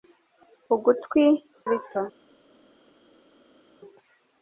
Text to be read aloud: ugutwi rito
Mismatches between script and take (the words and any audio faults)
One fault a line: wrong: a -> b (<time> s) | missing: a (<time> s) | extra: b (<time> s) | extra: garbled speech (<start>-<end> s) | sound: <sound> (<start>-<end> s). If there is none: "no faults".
no faults